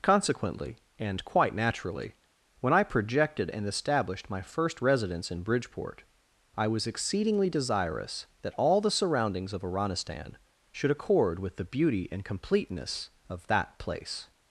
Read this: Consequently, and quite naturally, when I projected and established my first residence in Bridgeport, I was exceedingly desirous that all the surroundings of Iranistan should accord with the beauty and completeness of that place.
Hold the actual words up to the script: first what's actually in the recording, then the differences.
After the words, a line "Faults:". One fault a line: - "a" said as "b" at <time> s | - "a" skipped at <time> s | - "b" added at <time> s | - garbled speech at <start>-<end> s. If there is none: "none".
Consequently, and quite naturally, when I projected and established my first residence in Bridgeport, I was exceedingly desirous that all the surroundings of Iranistan should accord with the beauty and completeness of that place.
Faults:
none